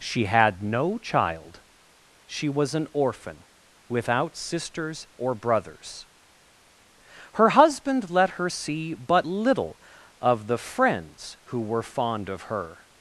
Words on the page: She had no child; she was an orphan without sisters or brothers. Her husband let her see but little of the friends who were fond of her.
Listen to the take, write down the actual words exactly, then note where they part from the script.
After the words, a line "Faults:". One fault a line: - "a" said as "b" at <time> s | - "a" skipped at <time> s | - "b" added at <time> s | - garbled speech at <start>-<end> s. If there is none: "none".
She had no child; she was an orphan without sisters or brothers. Her husband let her see but little of the friends who were fond of her.
Faults:
none